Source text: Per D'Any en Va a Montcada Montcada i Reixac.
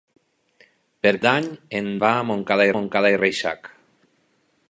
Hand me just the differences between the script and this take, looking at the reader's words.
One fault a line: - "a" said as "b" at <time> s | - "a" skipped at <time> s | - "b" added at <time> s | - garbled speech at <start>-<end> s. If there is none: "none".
none